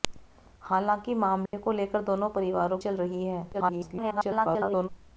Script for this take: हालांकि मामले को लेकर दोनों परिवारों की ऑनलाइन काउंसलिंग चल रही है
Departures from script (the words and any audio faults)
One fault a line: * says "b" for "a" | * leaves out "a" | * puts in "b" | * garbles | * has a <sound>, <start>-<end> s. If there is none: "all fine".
* has a dropout, 1.5-1.5 s
* leaves out "की ऑनलाइन काउंसलिंग"
* garbles